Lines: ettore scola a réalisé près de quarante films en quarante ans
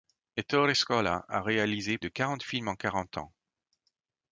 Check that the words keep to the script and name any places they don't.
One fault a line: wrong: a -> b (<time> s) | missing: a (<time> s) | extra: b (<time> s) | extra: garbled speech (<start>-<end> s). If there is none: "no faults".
missing: près (2.0 s)